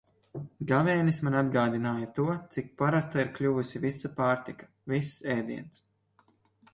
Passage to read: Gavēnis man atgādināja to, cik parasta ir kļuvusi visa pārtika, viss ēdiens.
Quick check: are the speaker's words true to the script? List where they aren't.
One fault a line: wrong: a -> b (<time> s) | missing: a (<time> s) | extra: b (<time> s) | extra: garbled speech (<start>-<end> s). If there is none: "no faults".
no faults